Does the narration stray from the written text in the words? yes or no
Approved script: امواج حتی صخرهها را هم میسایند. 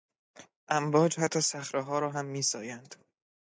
no